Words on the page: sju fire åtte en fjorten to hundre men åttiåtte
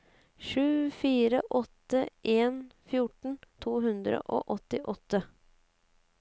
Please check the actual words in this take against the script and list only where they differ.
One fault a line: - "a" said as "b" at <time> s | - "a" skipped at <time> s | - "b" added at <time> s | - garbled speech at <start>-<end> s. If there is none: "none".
- "men" said as "og" at 4.2 s